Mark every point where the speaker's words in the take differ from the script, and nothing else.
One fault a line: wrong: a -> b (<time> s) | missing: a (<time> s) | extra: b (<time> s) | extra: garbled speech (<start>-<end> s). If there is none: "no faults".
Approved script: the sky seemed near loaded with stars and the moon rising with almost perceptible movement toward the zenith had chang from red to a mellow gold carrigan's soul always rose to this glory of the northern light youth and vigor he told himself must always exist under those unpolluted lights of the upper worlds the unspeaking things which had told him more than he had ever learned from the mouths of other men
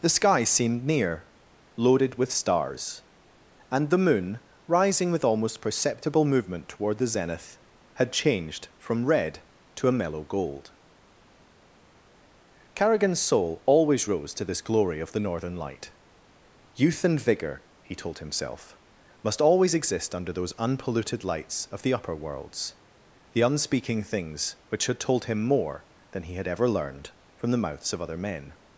wrong: chang -> changed (8.1 s)